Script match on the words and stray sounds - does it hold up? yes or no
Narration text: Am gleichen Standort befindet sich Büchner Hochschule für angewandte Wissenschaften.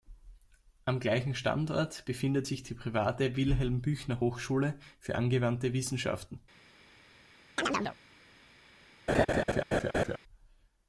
no